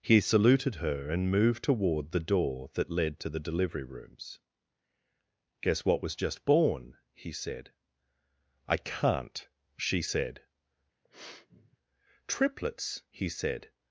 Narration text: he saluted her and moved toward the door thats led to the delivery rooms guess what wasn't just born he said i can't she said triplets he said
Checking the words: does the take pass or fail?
fail